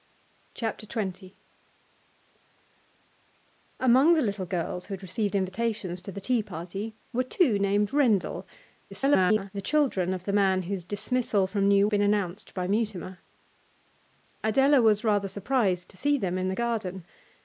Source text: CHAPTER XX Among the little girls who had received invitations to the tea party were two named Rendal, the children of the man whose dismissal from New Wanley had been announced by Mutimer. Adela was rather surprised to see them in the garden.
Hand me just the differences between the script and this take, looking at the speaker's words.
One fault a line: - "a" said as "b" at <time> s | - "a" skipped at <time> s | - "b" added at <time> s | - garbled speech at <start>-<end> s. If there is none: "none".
- garbled speech at 8.9-9.5 s
- "Wanley had" skipped at 11.9 s